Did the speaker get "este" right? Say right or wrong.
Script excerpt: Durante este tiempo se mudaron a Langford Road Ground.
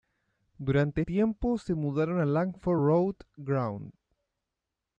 wrong